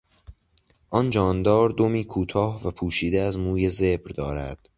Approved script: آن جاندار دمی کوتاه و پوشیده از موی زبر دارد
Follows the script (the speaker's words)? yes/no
yes